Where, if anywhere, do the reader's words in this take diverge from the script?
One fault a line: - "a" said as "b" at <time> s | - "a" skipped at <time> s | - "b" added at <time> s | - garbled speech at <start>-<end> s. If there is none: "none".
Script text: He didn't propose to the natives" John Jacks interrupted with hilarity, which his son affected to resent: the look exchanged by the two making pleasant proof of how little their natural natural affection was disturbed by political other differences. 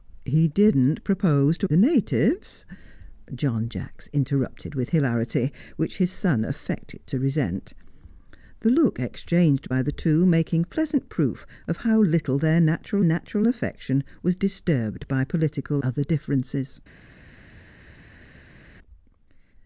none